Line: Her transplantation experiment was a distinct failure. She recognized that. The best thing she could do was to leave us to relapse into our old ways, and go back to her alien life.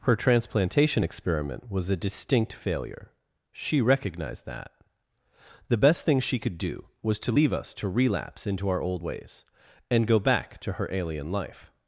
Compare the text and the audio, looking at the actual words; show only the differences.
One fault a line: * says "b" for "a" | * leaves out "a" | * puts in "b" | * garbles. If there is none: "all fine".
all fine